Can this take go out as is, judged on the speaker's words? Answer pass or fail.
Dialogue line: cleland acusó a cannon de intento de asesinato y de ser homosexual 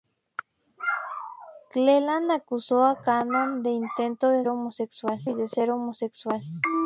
fail